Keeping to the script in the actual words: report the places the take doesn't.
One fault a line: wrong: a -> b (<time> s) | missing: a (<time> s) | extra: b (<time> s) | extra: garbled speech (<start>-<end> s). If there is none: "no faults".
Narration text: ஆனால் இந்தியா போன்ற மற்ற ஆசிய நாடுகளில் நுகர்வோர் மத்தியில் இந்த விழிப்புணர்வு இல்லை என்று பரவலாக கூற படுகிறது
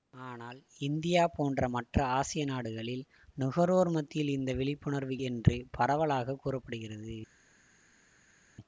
missing: இல்லை (5.2 s)